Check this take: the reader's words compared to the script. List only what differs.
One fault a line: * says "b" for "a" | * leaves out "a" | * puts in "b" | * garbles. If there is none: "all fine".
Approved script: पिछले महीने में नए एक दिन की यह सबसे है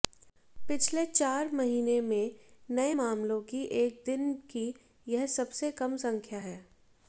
* puts in "चार"
* puts in "मामलों की"
* puts in "कम संख्या"